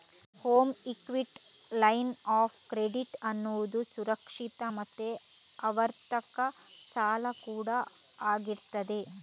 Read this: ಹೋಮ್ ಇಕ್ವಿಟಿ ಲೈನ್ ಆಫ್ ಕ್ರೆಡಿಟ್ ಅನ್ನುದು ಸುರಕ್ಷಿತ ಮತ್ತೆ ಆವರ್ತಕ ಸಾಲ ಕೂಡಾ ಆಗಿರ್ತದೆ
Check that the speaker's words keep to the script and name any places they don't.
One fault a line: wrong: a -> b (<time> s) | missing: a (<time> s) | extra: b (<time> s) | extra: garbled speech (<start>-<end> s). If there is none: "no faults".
no faults